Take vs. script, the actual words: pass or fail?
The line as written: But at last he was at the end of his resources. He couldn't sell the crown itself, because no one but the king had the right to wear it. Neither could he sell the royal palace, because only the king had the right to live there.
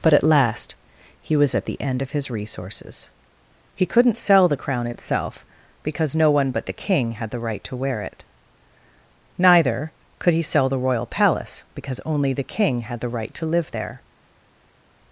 pass